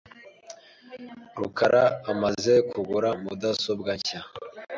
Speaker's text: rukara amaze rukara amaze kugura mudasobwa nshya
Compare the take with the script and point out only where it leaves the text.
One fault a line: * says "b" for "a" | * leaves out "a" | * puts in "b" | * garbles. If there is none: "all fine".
* leaves out "rukara amaze"